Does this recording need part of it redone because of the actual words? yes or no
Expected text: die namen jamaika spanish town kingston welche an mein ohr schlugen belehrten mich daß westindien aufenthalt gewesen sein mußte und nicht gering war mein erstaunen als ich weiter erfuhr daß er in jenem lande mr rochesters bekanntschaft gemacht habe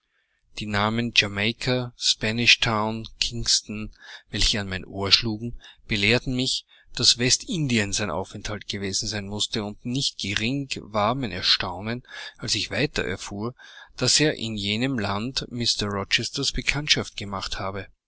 yes